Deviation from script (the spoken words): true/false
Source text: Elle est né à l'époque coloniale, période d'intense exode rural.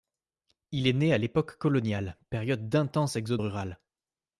true